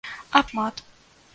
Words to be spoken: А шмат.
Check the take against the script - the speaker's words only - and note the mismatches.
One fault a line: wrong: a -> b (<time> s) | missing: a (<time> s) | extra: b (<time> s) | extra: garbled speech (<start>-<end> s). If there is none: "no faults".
no faults